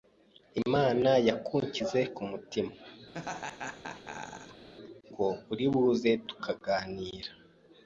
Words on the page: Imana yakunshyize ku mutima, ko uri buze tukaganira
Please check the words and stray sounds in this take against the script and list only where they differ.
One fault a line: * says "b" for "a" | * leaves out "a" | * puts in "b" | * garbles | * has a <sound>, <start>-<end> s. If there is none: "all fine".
* has a laugh, 3.1-4.7 s